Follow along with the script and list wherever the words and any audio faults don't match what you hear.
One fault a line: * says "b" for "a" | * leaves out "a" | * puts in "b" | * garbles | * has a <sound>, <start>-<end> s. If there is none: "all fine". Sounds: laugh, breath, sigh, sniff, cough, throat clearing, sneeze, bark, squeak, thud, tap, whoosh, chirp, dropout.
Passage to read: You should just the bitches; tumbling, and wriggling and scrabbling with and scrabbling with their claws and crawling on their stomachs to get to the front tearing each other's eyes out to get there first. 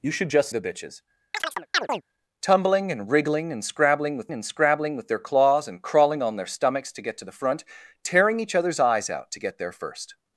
* has a chirp, 1.3-2.0 s